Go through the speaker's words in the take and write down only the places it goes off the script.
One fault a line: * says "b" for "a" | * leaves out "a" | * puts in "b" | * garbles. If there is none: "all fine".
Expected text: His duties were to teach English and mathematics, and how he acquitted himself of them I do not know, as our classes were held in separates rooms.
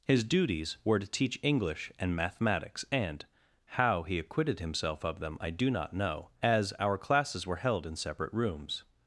* says "separate" for "separates"